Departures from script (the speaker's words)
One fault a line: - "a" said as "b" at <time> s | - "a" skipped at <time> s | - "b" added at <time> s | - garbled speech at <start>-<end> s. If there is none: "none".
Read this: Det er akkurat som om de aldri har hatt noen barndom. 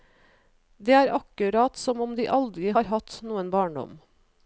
none